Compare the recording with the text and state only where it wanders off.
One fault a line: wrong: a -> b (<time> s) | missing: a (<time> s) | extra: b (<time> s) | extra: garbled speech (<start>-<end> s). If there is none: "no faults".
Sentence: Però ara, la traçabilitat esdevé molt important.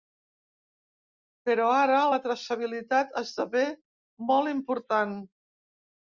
no faults